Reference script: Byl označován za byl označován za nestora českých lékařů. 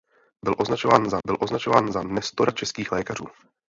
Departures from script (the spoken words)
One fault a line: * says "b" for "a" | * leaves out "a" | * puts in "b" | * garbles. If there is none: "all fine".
all fine